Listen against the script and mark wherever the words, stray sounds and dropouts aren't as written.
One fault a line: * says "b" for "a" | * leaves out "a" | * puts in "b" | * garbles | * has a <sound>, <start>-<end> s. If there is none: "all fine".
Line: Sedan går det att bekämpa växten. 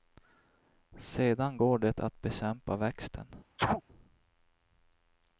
* has a sneeze, 3.6-3.8 s